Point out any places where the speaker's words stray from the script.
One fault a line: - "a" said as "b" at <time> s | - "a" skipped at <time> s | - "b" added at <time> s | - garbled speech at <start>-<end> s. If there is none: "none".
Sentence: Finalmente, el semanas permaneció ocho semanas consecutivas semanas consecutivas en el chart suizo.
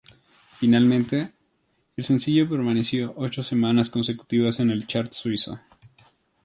- "semanas" said as "sencillo" at 2.0 s
- "semanas consecutivas" skipped at 4.6 s